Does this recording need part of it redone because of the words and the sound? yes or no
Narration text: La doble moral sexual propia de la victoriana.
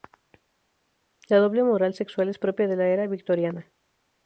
yes